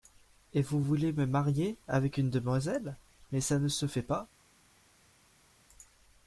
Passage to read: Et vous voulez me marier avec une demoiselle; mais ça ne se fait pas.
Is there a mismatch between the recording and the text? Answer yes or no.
no